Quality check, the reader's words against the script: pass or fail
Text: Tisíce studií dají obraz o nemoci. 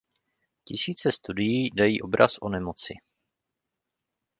pass